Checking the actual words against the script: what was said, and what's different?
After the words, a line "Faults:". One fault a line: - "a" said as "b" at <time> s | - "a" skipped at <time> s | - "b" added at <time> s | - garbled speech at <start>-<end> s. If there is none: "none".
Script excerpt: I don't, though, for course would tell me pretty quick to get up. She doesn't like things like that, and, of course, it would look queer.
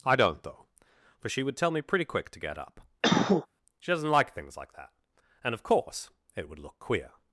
I don't, though, for she would tell me pretty quick to get up. She doesn't like things like that, and, of course, it would look queer.
Faults:
- "course" said as "she" at 1.3 s